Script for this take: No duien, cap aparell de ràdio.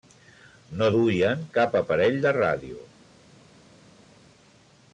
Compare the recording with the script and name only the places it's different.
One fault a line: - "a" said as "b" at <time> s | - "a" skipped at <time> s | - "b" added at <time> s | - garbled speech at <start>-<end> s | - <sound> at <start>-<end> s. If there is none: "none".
none